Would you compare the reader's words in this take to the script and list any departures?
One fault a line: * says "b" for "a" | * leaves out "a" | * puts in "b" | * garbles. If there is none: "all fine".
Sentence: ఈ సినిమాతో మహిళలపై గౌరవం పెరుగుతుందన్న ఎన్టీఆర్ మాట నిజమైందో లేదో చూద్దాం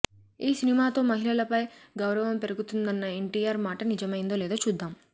all fine